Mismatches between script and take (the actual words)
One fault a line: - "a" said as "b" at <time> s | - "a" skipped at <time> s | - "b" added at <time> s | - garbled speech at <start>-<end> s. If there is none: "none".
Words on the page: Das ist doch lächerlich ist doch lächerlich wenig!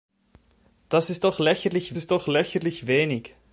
none